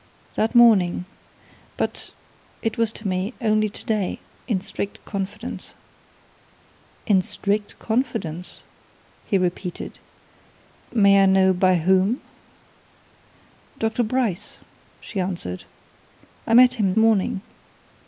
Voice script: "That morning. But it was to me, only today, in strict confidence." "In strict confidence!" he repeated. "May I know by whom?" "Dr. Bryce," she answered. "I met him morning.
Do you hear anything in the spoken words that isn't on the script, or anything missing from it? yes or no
no